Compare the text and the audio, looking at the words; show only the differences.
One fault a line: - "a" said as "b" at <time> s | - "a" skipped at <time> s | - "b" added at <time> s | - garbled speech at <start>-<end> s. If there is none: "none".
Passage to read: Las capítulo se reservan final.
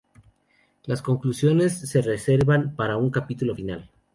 - "capítulo" said as "conclusiones" at 1.0 s
- "para un capítulo" added at 2.8 s